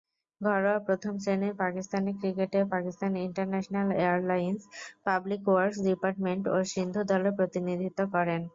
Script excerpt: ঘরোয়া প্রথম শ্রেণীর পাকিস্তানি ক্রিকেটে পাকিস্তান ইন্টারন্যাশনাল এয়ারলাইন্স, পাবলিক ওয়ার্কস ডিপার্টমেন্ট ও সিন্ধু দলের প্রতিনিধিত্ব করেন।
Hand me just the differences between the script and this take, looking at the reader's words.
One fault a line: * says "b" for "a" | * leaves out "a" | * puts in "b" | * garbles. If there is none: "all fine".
all fine